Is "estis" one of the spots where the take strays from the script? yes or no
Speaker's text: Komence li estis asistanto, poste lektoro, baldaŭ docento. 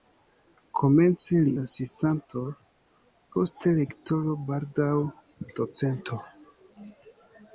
yes